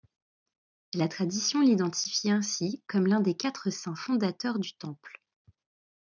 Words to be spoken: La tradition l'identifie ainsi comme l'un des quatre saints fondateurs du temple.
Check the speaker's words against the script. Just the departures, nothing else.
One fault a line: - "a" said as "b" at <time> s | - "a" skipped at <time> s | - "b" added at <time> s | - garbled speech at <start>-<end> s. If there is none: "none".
none